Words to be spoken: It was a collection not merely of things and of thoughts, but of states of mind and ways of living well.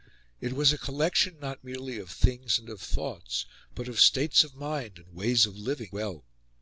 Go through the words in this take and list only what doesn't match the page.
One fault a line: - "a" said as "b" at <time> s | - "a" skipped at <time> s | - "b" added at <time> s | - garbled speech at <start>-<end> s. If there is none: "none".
none